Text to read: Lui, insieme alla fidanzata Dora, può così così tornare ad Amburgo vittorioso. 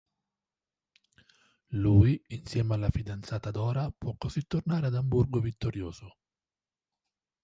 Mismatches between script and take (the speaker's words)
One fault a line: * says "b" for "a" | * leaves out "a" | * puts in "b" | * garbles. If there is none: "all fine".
* leaves out "così"